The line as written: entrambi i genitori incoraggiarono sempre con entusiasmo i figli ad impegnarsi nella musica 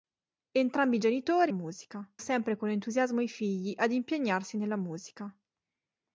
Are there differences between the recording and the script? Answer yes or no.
yes